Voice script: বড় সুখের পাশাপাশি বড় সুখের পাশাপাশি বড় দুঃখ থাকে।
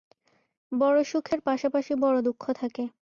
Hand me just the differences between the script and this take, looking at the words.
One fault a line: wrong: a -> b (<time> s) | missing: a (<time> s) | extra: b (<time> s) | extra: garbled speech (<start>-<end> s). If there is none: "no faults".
missing: সুখের পাশাপাশি বড় (2.2 s)